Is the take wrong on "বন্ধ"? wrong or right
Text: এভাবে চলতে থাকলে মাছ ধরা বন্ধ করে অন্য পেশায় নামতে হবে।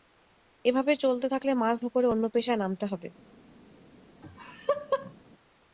wrong